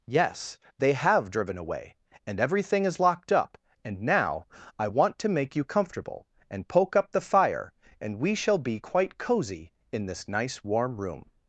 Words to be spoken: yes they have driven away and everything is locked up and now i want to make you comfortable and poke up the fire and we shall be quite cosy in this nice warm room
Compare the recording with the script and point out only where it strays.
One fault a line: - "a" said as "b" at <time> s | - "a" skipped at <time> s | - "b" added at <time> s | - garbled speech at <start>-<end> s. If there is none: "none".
none